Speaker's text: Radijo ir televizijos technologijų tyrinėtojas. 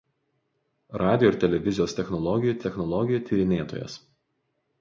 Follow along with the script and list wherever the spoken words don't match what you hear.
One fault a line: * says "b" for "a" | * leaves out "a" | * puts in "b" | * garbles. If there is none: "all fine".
* puts in "technologijų"